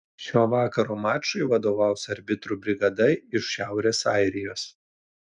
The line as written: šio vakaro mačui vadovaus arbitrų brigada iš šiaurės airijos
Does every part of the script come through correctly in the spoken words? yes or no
yes